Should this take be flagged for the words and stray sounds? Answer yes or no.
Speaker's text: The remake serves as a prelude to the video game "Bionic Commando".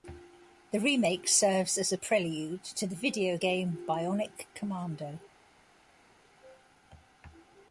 no